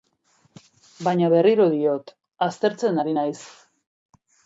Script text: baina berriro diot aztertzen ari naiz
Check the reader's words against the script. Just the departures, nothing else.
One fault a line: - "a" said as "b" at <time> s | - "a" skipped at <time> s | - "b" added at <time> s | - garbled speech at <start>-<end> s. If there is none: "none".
none